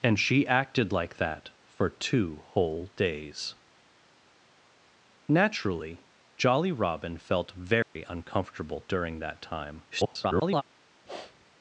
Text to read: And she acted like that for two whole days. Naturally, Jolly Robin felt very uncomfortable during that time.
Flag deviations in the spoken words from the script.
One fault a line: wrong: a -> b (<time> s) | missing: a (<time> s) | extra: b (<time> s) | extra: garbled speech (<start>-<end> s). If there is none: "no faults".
extra: garbled speech (9.9-10.6 s)